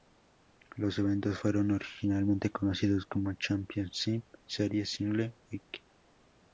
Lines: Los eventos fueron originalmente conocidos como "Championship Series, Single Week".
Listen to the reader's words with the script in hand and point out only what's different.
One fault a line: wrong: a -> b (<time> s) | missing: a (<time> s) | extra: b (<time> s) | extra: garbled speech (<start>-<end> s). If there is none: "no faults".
no faults